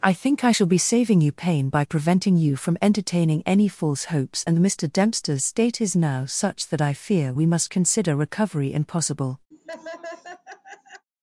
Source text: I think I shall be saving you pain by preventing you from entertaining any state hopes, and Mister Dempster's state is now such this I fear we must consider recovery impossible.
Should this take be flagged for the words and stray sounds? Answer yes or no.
yes